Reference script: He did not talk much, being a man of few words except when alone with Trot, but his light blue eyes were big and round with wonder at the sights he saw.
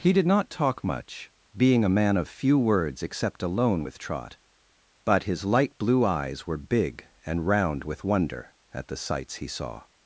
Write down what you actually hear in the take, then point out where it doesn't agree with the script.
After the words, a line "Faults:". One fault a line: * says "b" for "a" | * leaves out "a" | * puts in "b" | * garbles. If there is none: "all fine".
He did not talk much, being a man of few words except alone with Trot, but his light blue eyes were big and round with wonder at the sights he saw.
Faults:
* leaves out "when"